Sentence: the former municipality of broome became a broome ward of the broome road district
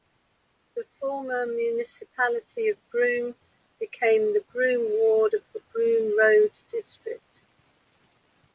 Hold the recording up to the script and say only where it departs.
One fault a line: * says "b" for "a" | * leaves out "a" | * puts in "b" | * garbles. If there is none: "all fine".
* says "the" for "a"